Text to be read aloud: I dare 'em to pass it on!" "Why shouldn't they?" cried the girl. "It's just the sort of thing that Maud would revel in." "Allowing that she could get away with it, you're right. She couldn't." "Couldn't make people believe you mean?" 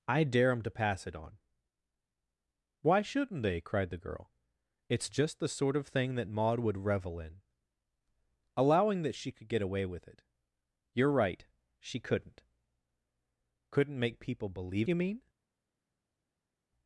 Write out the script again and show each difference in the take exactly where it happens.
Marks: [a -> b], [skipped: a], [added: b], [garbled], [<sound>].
I dare 'em to pass it on!" "Why shouldn't they?" cried the girl. "It's just the sort of thing that Maud would revel in." "Allowing that she could get away with it, you're right. She couldn't." "Couldn't make people believe you mean?"